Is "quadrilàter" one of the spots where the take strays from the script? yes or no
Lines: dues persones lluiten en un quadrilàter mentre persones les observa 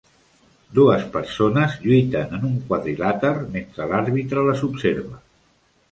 no